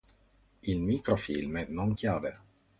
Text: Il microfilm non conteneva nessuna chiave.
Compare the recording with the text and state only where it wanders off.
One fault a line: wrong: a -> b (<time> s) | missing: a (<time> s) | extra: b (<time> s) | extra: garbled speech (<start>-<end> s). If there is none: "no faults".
missing: conteneva nessuna (1.9 s)